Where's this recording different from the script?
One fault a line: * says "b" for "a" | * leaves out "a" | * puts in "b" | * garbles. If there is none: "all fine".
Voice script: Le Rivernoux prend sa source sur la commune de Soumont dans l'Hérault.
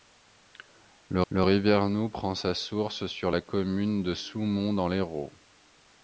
* puts in "le"